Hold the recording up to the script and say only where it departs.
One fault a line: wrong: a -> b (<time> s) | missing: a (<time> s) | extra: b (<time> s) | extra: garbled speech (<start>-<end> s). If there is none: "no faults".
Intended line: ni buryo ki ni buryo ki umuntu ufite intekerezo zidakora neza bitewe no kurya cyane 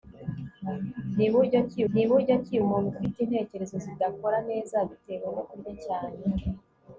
no faults